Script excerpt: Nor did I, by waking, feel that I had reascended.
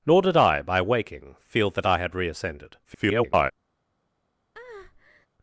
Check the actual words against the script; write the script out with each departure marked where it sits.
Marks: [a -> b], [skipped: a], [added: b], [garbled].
Nor did I, by waking, feel that I had reascended. [garbled]